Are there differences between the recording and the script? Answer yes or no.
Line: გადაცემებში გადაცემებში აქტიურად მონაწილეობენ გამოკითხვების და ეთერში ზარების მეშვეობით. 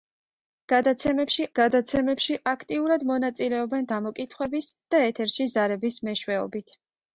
no